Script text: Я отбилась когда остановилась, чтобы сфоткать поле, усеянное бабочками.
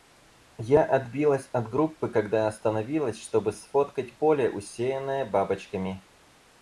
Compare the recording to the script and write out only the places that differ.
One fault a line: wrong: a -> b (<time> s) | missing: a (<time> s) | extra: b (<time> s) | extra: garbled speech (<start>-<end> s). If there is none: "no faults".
extra: от группы (1.5 s)